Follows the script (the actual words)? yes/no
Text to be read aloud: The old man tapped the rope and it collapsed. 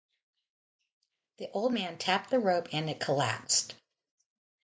yes